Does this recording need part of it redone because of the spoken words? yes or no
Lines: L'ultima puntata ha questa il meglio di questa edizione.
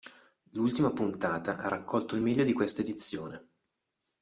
yes